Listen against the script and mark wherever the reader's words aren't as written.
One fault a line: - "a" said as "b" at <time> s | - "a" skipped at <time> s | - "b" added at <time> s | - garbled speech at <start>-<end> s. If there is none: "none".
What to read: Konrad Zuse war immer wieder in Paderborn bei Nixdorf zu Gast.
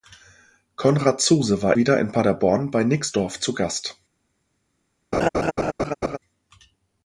- "immer" skipped at 1.8 s